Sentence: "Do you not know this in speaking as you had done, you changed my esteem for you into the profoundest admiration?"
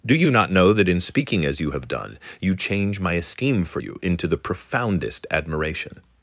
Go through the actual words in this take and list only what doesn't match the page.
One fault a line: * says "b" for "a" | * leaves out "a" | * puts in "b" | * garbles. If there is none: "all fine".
* says "that" for "this"
* says "have" for "had"
* says "change" for "changed"